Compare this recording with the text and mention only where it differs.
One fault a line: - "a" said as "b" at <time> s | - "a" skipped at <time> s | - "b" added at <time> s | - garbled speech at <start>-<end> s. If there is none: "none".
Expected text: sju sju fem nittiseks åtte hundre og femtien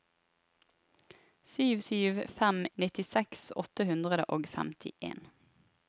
none